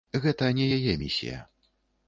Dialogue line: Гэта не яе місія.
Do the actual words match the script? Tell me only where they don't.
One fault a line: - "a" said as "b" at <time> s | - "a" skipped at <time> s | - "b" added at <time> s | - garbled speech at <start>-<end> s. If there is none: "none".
none